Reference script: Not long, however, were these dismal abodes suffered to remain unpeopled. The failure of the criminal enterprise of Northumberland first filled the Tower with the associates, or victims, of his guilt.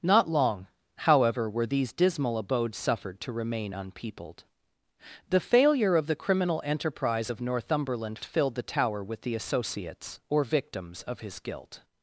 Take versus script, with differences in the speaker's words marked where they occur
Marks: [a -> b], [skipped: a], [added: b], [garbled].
Not long, however, were these dismal abodes suffered to remain unpeopled. The failure of the criminal enterprise of Northumberland [skipped: first] filled the Tower with the associates, or victims, of his guilt.